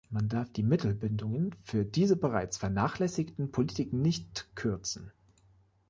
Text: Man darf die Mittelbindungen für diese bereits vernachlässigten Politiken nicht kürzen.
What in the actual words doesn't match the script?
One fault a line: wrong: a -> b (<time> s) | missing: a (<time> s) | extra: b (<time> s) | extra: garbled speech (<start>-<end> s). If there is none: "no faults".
no faults